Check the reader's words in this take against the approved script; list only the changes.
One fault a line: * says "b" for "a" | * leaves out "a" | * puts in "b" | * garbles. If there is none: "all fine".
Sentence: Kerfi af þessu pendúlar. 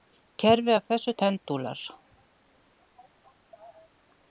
all fine